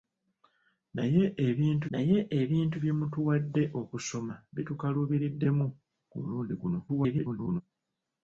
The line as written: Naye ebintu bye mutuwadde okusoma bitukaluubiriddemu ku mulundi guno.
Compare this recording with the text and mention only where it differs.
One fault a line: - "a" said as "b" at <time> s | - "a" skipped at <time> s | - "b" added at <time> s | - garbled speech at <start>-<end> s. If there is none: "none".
- "naye ebintu" added at 1.9 s
- garbled speech at 6.9-7.6 s